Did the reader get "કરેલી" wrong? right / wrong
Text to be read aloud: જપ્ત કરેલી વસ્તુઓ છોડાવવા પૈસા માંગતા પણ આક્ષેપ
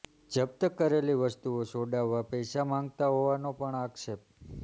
right